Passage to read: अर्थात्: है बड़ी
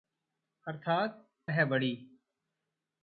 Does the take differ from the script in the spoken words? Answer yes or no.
no